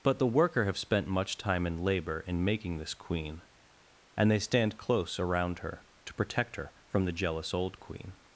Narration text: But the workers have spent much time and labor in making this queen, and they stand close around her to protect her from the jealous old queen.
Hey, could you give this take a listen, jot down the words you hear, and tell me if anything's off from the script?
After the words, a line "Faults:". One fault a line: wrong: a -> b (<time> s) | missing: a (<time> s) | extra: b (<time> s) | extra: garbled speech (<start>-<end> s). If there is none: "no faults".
But the worker have spent much time and labor in making this queen, and they stand close around her to protect her from the jealous old queen.
Faults:
wrong: workers -> worker (0.3 s)